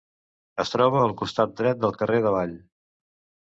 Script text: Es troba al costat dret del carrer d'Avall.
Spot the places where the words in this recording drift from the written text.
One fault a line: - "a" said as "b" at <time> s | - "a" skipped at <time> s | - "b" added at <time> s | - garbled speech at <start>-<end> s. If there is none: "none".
none